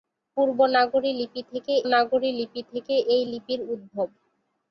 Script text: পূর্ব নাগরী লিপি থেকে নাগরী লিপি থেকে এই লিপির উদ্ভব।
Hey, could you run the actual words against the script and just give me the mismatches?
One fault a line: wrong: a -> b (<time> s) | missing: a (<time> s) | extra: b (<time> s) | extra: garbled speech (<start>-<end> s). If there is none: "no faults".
no faults